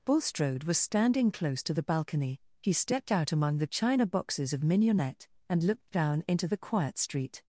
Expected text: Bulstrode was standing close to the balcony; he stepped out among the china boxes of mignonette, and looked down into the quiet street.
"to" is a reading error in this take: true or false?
false